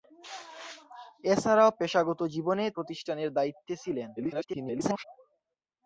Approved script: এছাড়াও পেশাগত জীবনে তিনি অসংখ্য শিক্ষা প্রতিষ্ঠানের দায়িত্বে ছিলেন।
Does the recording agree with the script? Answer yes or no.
no